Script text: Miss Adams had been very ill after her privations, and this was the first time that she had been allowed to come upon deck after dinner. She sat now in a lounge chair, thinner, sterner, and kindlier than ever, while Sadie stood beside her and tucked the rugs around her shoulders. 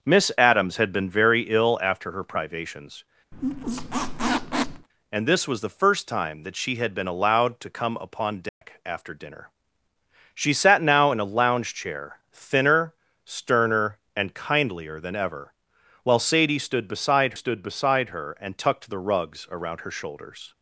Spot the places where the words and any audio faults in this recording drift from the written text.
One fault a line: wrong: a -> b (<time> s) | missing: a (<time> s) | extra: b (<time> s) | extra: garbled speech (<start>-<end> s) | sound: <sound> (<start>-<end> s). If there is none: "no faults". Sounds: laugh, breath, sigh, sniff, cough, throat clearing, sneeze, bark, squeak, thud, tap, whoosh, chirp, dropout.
sound: squeak (3.3-4.9 s)
sound: dropout (8.5-8.6 s)
extra: stood beside (17.3 s)